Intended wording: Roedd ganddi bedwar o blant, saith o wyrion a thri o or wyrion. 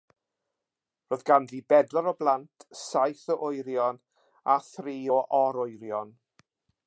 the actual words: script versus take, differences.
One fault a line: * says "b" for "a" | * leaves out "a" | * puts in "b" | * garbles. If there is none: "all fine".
all fine